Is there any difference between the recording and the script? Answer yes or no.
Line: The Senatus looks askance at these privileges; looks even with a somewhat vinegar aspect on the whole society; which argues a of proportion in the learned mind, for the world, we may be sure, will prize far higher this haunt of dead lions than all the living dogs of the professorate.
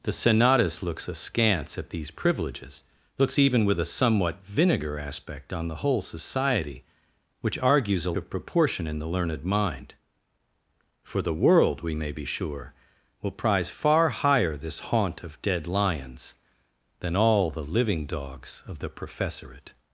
no